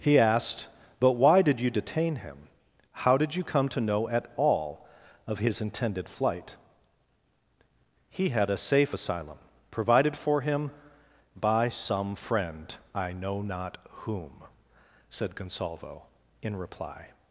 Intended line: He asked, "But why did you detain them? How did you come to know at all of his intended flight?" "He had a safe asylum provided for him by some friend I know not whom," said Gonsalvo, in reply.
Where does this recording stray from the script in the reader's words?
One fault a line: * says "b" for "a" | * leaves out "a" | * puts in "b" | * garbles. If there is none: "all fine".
* says "him" for "them"